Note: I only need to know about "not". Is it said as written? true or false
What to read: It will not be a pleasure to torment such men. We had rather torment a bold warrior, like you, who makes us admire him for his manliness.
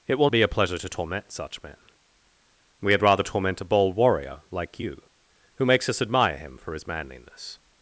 false